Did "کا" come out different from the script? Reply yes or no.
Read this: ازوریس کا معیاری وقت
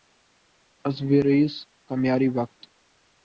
no